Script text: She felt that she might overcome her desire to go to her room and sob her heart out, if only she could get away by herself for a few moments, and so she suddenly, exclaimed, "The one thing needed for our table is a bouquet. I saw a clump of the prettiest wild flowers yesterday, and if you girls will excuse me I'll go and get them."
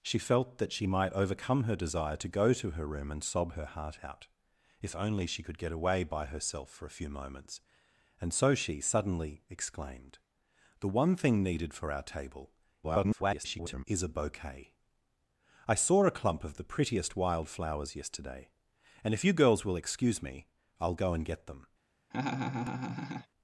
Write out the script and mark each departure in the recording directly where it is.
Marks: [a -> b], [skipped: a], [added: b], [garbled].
She felt that she might overcome her desire to go to her room and sob her heart out, if only she could get away by herself for a few moments, and so she suddenly, exclaimed, "The one thing needed for our table [garbled] is a bouquet. I saw a clump of the prettiest wild flowers yesterday, and if you girls will excuse me I'll go and get them."